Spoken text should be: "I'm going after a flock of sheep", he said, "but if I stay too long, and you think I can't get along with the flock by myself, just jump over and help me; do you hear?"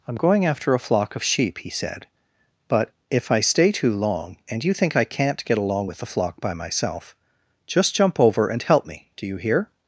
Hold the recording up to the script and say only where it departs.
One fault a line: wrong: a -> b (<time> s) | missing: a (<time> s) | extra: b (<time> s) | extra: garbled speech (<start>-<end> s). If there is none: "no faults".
no faults